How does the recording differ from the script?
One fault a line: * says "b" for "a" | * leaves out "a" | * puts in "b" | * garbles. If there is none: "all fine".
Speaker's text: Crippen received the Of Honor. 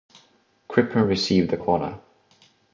all fine